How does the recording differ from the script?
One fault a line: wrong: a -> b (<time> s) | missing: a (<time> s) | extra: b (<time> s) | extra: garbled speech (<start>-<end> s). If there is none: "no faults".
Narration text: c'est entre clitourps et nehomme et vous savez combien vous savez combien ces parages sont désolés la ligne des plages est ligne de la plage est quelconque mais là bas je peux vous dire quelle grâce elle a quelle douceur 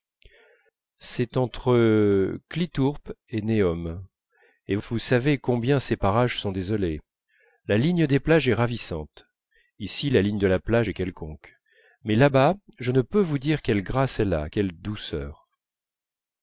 missing: vous savez combien (5.8 s)
extra: ravissante ici la (8.6 s)
extra: ne (12.9 s)